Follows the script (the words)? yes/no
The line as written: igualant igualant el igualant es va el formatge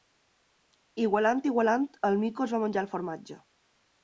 no